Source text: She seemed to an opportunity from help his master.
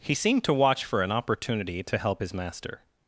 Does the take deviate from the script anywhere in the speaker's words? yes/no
yes